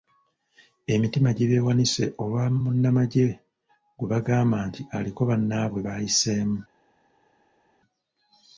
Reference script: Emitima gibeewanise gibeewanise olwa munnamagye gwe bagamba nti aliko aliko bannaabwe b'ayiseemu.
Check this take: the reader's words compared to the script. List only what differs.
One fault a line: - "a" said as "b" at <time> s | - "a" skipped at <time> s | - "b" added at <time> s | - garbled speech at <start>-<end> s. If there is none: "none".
- "gibeewanise" skipped at 2.0 s
- "aliko" skipped at 5.2 s